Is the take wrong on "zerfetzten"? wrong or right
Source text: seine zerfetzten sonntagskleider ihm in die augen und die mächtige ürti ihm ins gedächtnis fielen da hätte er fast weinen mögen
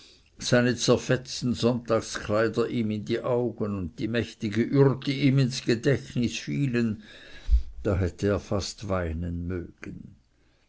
right